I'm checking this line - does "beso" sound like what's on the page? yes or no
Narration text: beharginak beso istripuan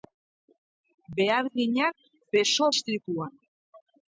yes